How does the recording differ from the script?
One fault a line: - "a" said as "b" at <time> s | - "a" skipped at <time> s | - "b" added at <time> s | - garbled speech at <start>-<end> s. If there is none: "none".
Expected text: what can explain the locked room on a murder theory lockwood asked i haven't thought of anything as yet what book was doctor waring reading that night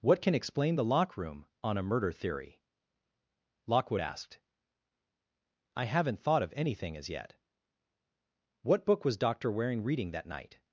- "locked" said as "lock" at 0.8 s